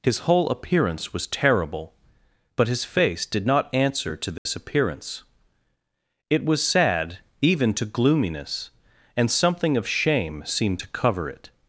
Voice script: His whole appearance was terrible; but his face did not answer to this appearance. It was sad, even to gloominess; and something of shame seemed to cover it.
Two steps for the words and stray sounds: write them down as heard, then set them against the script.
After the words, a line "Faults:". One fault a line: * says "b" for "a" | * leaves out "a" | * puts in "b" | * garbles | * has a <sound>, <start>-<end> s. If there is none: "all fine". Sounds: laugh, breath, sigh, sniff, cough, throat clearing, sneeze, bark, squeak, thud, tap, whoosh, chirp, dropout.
His whole appearance was terrible; but his face did not answer to this appearance. It was sad, even to gloominess; and something of shame seemed to cover it.
Faults:
* has a dropout, 4.4-4.5 s